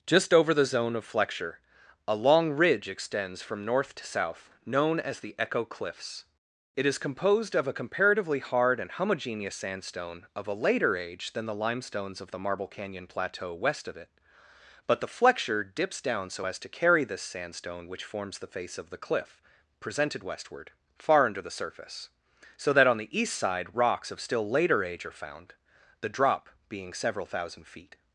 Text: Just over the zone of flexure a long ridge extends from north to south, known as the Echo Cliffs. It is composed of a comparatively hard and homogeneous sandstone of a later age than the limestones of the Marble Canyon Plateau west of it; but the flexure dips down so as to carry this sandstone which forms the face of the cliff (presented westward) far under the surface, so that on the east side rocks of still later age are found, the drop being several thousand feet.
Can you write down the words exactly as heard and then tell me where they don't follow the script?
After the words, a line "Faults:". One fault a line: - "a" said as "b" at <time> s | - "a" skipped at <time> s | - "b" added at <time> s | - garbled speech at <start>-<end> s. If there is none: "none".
Just over the zone of flexure a long ridge extends from north to south, known as the Echo Cliffs. It is composed of a comparatively hard and homogeneous sandstone of a later age than the limestones of the Marble Canyon Plateau west of it; but the flexure dips down so as to carry this sandstone which forms the face of the cliff (presented westward) far under the surface, so that on the east side rocks of still later age are found, the drop being several thousand feet.
Faults:
none